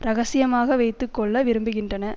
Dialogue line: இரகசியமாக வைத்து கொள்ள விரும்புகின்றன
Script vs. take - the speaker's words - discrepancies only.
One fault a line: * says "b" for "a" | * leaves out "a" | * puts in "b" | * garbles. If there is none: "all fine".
all fine